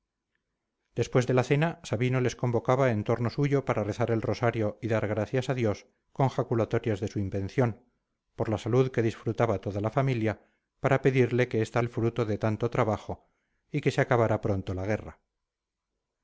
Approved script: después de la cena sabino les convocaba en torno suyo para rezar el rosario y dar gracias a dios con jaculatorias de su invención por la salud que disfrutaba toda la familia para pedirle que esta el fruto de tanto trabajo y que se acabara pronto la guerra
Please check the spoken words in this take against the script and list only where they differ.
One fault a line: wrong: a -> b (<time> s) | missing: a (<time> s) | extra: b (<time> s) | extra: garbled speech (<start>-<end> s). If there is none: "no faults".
no faults